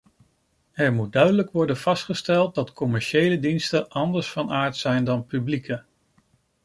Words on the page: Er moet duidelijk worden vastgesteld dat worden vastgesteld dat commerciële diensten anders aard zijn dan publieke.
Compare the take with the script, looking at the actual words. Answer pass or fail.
fail